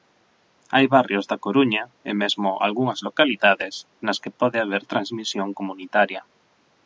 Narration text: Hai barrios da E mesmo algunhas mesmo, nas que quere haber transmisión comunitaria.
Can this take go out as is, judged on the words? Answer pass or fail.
fail